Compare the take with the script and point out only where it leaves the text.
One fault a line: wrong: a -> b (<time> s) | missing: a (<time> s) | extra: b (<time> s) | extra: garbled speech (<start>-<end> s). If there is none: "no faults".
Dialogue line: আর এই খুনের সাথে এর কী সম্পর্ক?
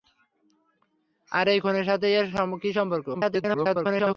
extra: garbled speech (3.1-4.2 s)